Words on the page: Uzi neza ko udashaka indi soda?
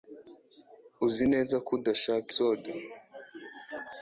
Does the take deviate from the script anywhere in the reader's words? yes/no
yes